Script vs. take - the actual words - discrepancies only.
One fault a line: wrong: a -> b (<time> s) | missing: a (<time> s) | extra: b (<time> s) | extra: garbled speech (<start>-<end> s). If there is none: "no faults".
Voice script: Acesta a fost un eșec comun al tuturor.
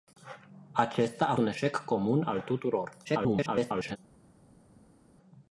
missing: fost (1.4 s)
extra: garbled speech (3.0-4.0 s)